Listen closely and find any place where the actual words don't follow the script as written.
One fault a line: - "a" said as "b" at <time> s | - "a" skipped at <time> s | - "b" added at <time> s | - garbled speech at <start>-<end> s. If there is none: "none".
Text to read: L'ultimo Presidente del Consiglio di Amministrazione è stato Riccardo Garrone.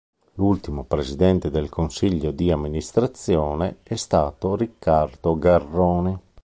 none